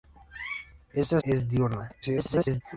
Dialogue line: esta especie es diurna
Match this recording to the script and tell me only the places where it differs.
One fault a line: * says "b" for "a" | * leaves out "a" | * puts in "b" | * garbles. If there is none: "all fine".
* leaves out "especie"
* garbles